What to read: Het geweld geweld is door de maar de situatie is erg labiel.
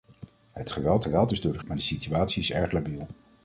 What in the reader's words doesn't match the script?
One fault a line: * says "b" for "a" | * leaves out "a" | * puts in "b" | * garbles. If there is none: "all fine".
all fine